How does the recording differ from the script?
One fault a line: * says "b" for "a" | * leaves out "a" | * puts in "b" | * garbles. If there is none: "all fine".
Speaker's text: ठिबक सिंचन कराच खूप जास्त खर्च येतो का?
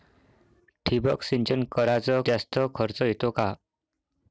* leaves out "खूप"